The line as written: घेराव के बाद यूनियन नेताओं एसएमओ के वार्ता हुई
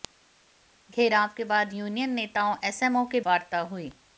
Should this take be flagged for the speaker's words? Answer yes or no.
no